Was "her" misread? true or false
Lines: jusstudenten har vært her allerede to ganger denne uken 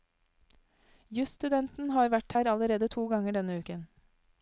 false